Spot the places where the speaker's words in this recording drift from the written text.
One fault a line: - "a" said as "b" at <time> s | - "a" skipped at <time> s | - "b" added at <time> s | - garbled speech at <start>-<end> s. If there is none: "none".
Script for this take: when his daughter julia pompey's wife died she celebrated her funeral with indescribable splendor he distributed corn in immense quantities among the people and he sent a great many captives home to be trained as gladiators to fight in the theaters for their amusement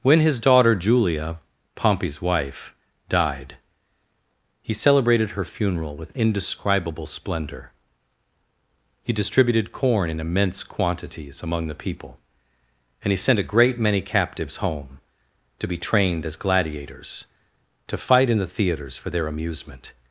- "she" said as "he" at 4.6 s